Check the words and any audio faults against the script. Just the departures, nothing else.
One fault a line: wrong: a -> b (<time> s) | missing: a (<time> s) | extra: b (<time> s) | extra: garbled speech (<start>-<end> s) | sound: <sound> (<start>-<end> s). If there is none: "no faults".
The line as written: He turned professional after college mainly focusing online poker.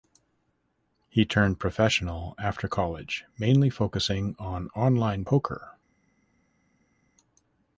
extra: on (4.4 s)